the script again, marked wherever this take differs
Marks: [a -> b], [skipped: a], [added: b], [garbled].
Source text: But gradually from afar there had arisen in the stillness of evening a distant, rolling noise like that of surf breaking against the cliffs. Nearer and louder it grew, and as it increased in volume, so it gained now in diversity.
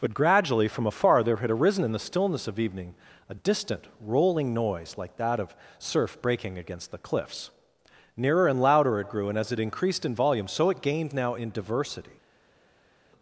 But gradually from afar there had arisen in the stillness of evening a distant, rolling noise like that of surf breaking against the cliffs. Nearer and louder it grew, and as it increased in volume, so it gained now in diversity.